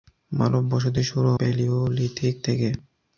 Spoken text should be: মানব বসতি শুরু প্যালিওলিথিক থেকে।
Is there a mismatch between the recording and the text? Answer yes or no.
no